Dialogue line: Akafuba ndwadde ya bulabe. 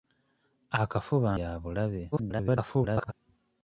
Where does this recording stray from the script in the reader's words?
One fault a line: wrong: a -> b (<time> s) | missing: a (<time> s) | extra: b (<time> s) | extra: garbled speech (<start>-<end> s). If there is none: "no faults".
missing: ndwadde (1.3 s)
extra: garbled speech (2.1-3.1 s)